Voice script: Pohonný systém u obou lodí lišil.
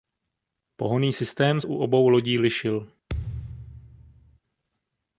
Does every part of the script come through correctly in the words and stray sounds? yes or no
no